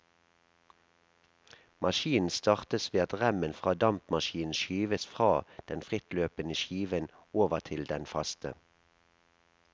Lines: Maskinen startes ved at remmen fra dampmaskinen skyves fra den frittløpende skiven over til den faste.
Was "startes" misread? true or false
false